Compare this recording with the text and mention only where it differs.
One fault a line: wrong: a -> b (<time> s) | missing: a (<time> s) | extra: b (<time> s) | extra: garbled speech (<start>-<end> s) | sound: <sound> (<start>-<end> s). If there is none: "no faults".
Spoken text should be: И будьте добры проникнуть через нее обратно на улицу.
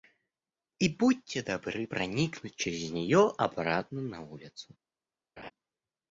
sound: laugh (5.4-5.5 s)